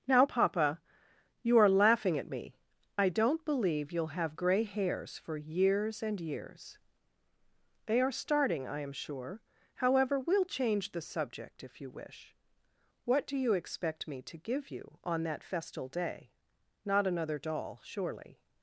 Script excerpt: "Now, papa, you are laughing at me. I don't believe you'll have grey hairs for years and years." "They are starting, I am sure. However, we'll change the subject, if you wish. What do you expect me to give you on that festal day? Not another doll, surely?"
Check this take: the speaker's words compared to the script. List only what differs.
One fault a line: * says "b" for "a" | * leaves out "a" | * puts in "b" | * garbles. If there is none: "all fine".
all fine